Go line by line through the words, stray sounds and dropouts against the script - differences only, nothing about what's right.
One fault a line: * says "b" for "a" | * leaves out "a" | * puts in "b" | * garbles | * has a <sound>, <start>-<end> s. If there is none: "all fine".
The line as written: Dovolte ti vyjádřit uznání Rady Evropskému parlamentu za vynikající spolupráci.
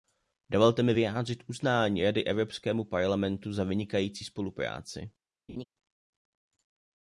* says "mi" for "ti"
* has a laugh, 5.5-5.6 s